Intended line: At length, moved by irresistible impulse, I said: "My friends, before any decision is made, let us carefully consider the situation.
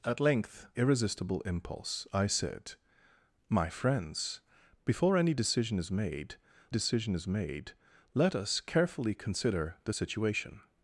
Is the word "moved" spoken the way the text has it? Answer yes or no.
no